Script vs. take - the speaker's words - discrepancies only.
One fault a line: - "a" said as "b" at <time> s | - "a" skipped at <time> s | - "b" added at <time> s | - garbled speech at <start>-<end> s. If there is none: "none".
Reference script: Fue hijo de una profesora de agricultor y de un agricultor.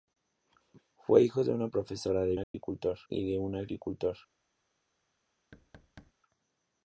none